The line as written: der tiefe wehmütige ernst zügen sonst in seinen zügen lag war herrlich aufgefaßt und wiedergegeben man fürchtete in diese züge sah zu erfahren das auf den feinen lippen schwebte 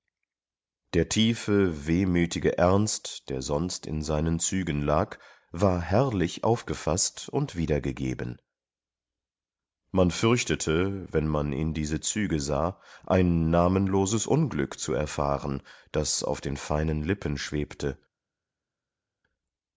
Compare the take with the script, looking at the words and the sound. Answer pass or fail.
fail